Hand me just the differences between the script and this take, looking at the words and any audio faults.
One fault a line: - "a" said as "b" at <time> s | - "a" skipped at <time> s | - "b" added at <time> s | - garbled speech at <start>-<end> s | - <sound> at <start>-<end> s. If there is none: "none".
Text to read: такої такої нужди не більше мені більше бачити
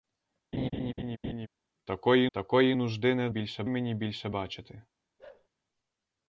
- laugh at 0.5-1.5 s
- bark at 5.2-5.5 s